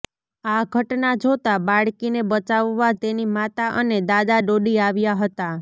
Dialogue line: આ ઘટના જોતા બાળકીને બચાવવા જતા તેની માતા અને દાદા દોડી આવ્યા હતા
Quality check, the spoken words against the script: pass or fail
fail